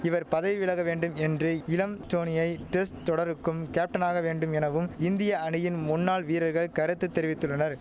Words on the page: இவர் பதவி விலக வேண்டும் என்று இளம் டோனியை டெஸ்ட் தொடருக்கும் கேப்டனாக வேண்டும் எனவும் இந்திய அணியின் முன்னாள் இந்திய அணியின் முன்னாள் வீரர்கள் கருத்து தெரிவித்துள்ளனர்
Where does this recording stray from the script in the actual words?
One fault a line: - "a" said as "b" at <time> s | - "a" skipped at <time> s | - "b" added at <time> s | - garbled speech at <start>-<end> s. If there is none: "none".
- "இந்திய அணியின் முன்னாள்" skipped at 6.2 s